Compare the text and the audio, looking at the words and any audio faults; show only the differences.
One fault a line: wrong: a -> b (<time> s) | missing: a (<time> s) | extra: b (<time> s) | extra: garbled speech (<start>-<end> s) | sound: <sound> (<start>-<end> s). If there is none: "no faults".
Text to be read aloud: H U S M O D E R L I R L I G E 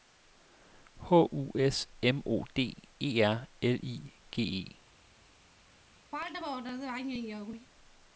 missing: R L I (4.1 s)
sound: throat clearing (6.1-7.7 s)